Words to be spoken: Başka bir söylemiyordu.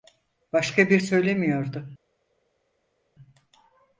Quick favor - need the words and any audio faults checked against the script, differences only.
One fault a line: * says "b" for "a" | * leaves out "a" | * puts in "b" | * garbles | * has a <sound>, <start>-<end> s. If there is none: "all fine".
all fine